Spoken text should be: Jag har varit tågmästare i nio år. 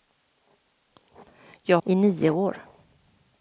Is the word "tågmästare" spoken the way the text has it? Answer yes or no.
no